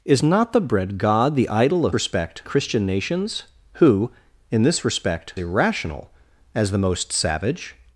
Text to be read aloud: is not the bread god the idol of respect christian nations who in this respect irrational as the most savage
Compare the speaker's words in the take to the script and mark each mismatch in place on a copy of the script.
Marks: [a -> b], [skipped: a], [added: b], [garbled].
is not the bread god the idol of respect christian nations who in this respect irrational as the most savage